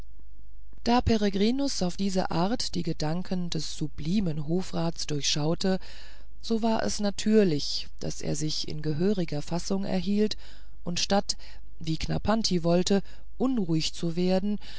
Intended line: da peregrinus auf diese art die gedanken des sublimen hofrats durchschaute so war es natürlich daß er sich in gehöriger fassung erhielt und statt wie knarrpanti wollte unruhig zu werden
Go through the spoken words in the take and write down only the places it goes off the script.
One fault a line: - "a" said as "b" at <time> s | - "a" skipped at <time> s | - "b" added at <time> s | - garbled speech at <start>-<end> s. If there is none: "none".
none